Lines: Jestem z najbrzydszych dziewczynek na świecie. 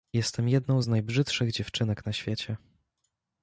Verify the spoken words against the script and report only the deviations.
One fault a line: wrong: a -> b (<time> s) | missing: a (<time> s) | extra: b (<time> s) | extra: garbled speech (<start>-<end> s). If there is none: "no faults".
extra: jedną (0.5 s)